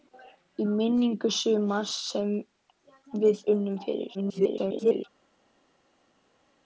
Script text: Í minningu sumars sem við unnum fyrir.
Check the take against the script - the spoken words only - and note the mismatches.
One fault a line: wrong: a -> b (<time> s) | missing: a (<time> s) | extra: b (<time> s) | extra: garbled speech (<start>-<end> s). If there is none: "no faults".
extra: garbled speech (4.1-5.0 s)